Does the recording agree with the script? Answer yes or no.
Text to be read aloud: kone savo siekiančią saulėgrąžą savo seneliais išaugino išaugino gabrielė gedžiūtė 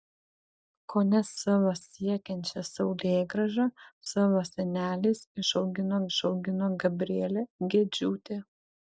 yes